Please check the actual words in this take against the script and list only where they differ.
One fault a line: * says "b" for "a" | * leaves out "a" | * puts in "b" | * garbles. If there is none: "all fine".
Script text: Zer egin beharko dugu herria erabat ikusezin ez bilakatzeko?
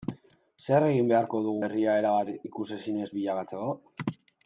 all fine